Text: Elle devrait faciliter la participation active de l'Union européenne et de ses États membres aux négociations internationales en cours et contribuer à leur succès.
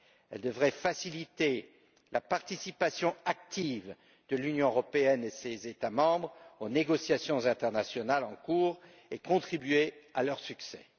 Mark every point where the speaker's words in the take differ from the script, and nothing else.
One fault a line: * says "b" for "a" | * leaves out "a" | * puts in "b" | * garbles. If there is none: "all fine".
all fine